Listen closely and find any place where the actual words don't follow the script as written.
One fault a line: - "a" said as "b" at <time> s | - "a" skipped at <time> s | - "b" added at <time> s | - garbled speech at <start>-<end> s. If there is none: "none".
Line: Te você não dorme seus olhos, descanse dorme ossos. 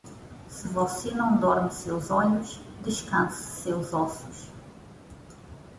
- "Te" said as "Se" at 0.5 s
- "dorme" said as "seus" at 3.6 s